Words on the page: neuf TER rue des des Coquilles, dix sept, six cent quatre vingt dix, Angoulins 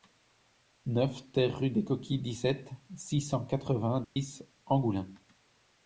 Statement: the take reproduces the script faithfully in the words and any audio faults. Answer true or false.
false